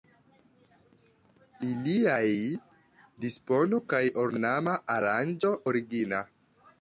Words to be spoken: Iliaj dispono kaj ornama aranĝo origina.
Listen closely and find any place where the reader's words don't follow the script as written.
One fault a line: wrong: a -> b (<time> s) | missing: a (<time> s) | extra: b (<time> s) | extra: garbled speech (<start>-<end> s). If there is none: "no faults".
no faults